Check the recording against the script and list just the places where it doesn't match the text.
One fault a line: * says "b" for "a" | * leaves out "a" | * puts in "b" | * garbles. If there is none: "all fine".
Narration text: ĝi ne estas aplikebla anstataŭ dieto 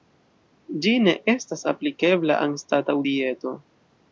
all fine